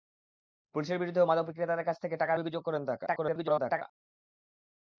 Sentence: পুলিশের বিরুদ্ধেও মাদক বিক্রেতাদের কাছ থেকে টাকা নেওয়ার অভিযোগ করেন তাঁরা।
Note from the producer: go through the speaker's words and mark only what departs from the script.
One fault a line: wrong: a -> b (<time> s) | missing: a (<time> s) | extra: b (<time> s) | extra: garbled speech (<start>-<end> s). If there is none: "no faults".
missing: নেওয়ার (2.3 s)
extra: garbled speech (3.1-3.8 s)